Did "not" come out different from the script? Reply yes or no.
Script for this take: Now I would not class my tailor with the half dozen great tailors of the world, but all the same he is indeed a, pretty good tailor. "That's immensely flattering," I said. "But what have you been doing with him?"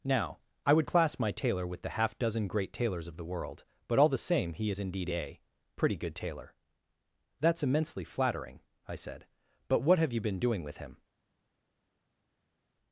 yes